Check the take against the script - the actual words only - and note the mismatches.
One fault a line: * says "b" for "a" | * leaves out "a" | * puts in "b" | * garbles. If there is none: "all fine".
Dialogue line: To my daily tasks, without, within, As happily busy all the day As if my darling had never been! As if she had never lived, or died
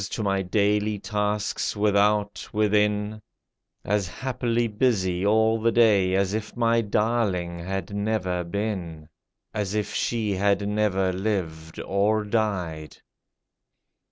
all fine